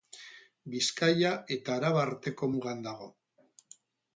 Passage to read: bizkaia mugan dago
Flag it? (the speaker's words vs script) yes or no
yes